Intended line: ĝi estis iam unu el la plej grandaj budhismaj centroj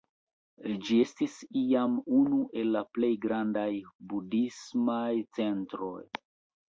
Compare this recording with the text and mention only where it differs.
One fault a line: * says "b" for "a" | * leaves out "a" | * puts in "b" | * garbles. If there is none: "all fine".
all fine